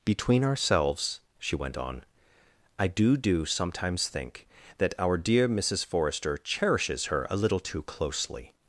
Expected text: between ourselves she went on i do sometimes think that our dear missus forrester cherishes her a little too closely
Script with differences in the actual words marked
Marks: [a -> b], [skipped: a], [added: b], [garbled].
between ourselves she went on i do [added: do] sometimes think that our dear missus forrester cherishes her a little too closely